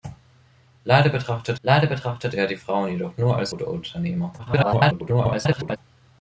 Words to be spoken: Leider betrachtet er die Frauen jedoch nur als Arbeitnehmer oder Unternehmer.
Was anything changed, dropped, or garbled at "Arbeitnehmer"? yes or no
yes